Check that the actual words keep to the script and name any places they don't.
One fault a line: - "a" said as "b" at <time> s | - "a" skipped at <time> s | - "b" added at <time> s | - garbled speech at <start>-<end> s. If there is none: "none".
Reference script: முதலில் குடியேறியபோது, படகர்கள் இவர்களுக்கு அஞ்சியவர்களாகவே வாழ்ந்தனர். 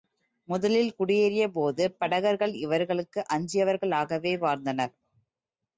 none